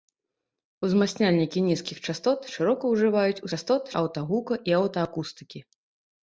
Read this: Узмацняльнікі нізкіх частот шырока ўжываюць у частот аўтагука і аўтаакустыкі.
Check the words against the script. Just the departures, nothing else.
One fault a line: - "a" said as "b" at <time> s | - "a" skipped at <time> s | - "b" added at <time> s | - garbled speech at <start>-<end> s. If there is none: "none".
none